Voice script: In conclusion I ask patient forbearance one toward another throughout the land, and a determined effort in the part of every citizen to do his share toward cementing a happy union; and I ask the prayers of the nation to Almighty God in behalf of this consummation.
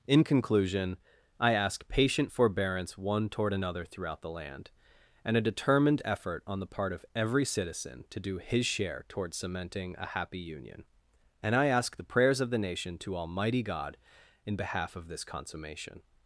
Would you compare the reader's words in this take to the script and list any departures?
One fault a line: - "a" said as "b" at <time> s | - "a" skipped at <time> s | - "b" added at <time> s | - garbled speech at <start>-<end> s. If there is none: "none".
- "in" said as "on" at 6.5 s